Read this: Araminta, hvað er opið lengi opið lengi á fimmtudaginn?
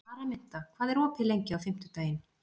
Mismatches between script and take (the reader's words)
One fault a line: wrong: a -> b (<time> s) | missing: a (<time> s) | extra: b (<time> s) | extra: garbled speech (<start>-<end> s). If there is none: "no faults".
missing: opið lengi (1.6 s)